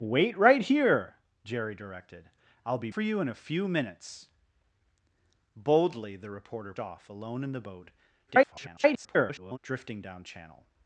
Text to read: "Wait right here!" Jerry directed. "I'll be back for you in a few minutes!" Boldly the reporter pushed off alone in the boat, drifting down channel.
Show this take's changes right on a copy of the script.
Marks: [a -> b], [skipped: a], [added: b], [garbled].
"Wait right here!" Jerry directed. "I'll be [skipped: back] for you in a few minutes!" Boldly the reporter [skipped: pushed] off alone in the boat, [garbled] drifting down channel.